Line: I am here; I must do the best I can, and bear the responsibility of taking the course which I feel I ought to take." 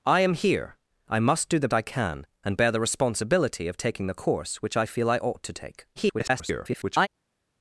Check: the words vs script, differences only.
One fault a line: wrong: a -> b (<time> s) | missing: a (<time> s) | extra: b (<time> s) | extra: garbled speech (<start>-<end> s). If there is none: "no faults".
missing: best (1.7 s)
extra: garbled speech (6.0-7.1 s)